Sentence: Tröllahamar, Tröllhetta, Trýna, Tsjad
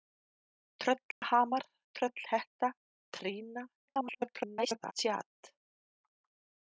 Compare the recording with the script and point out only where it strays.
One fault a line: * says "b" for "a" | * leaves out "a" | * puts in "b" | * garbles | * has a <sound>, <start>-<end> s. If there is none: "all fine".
* has a dropout, 1.1-1.2 s
* garbles